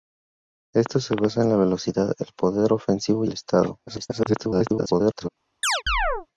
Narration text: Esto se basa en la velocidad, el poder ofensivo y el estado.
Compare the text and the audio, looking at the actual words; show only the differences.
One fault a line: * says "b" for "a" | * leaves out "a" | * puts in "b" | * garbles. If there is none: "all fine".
* leaves out "y"
* garbles